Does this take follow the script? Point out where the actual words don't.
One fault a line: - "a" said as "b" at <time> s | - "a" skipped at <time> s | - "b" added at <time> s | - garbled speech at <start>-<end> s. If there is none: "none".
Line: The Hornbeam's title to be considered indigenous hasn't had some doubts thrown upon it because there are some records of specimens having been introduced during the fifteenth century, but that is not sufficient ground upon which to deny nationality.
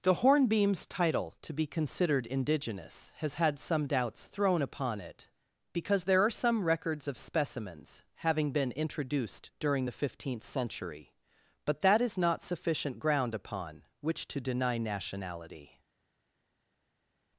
- "hasn't" said as "has" at 3.2 s